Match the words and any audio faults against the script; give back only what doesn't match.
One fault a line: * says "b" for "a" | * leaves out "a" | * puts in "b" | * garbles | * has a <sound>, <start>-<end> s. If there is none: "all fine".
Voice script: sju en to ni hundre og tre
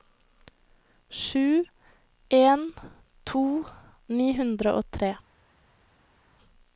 all fine